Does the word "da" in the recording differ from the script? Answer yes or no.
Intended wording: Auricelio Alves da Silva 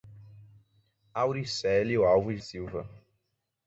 yes